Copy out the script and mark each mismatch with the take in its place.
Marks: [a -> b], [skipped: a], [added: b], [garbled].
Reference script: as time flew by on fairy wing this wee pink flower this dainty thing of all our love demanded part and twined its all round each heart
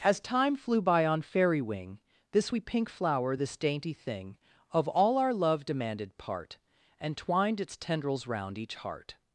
as time flew by on fairy wing this wee pink flower this dainty thing of all our love demanded part and twined its [all -> tendrils] round each heart